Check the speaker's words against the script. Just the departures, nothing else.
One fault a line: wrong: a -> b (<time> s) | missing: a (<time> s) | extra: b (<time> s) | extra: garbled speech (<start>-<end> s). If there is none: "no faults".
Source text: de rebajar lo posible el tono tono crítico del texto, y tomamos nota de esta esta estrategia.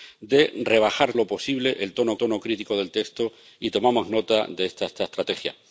no faults